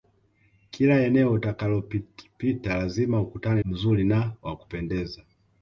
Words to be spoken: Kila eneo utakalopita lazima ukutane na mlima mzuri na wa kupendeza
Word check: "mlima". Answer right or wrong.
wrong